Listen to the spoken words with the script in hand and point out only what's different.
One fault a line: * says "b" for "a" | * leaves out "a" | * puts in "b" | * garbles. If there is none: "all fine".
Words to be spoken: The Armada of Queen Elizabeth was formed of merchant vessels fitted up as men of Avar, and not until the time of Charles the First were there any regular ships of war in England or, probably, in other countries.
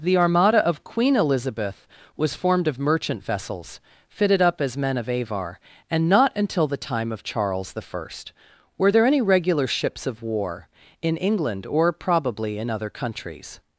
all fine